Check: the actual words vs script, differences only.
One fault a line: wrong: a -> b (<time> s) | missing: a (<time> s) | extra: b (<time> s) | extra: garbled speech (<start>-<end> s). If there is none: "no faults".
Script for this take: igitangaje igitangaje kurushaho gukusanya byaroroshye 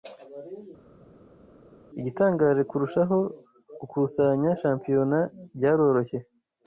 missing: igitangaje (2.6 s)
extra: shampiyona (4.6 s)